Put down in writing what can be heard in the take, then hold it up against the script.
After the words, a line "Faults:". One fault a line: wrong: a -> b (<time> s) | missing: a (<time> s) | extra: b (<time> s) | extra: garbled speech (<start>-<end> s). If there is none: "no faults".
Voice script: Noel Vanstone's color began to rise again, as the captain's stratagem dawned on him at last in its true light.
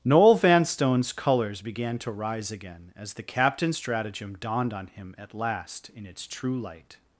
Noel Vanstone's colors began to rise again, as the captain's stratagem dawned on him at last in its true light.
Faults:
wrong: color -> colors (1.1 s)